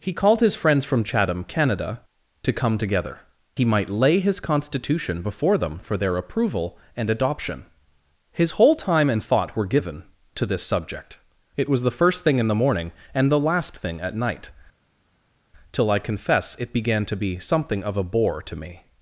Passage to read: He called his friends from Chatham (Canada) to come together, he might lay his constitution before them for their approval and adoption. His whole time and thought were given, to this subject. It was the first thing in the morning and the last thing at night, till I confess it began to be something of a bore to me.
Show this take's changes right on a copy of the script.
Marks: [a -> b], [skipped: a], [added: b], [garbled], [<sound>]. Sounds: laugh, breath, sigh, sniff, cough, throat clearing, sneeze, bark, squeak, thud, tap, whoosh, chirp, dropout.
He called his friends from Chatham (Canada) to come together, he might lay his constitution before them for their approval and adoption. His whole time and thought were given, to this subject. It was the first thing in the morning and the last thing at night, till I confess it began to be something of a bore to me.